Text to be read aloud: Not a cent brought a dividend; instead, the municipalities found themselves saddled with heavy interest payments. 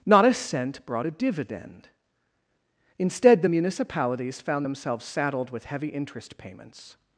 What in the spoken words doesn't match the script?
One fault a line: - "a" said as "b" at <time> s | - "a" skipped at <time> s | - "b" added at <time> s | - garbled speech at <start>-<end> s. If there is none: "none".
none